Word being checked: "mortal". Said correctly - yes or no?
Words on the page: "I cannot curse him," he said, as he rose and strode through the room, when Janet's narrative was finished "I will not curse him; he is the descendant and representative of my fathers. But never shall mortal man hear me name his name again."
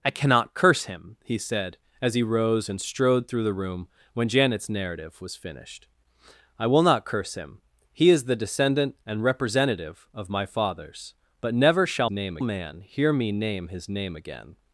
no